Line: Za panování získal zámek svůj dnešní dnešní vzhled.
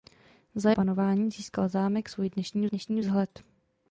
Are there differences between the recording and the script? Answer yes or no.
no